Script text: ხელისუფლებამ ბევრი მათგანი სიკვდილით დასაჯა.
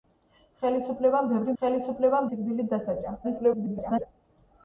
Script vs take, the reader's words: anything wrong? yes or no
yes